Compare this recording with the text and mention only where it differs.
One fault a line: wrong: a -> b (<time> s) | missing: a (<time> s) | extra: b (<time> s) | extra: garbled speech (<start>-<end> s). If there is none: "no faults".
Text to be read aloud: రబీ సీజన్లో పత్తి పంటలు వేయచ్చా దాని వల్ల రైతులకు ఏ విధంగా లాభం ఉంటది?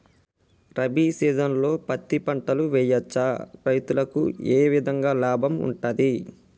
missing: దాని వల్ల (3.3 s)